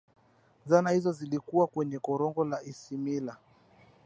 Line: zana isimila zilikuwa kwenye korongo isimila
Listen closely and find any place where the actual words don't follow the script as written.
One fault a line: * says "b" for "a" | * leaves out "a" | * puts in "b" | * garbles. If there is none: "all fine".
* says "hizo" for "isimila"
* puts in "la"